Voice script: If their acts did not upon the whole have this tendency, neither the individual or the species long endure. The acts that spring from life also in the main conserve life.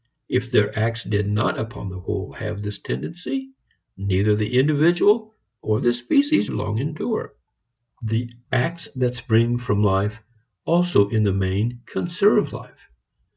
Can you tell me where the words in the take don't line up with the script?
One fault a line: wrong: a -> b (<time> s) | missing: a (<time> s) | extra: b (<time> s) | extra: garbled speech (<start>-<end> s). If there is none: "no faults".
no faults